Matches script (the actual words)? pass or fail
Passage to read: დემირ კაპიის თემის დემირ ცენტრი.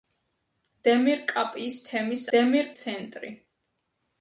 pass